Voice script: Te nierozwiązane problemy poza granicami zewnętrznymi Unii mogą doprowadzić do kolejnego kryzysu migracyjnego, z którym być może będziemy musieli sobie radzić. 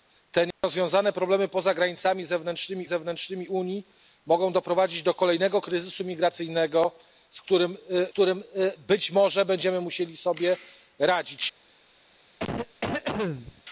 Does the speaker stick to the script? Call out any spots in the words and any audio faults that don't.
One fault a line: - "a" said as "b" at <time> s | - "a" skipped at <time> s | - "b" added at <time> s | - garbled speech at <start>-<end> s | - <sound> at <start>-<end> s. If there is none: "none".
- dropout at 0.5-0.6 s
- "zewnętrznymi" added at 2.8 s
- "którym" added at 8.1 s
- cough at 12.4-13.6 s